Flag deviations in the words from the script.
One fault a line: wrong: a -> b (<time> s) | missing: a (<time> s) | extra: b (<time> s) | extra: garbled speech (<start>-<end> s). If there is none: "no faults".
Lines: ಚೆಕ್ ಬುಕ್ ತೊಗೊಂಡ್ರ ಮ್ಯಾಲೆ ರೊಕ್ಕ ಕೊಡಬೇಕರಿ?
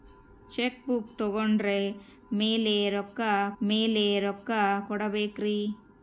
extra: ಮ್ಯಾಲೆ ರೊಕ್ಕ (3.6 s)